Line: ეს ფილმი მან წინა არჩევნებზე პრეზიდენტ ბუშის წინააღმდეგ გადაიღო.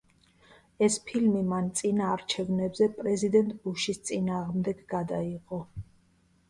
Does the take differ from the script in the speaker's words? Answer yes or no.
no